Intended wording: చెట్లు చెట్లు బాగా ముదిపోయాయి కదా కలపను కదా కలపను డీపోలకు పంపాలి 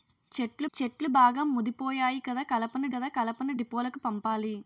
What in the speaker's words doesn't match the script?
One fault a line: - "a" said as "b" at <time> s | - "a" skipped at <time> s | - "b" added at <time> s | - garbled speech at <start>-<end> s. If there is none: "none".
none